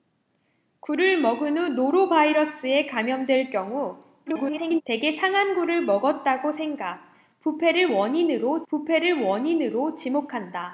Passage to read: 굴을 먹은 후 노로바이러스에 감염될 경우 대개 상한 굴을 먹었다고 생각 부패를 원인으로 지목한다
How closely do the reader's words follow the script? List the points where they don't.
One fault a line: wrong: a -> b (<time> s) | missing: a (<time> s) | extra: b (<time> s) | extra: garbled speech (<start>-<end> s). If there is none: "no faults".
extra: garbled speech (4.3-4.8 s)
extra: 부패를 원인으로 (8.7 s)